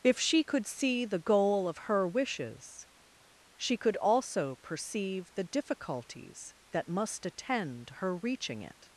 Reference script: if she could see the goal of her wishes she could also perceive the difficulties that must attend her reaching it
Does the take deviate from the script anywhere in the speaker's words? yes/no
no